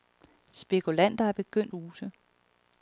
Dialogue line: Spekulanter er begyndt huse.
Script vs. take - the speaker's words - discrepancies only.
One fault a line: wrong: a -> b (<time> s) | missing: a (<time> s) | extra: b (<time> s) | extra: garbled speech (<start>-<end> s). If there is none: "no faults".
no faults